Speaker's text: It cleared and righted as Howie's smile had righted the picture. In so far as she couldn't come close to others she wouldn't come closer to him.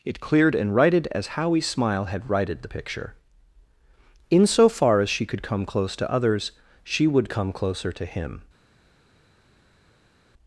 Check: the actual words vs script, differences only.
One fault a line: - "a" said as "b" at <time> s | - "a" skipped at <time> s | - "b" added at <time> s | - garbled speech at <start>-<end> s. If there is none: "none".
- "couldn't" said as "could" at 5.3 s
- "wouldn't" said as "would" at 7.1 s